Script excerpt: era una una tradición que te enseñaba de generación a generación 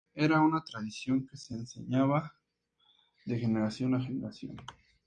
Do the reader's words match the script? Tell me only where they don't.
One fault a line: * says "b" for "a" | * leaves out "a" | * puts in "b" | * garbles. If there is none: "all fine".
* leaves out "una"
* says "se" for "te"